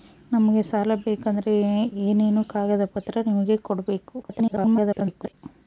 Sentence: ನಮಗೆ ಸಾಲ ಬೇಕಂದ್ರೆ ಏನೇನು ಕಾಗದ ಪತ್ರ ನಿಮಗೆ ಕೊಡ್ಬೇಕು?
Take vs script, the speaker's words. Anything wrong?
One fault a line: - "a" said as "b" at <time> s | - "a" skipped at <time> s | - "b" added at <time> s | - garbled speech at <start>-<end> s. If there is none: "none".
- garbled speech at 4.2-5.3 s